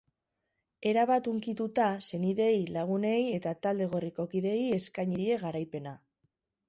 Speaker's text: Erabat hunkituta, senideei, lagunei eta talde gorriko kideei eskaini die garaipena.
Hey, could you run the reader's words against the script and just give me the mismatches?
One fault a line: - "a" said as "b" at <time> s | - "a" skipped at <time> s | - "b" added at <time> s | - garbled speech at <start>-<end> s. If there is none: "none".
none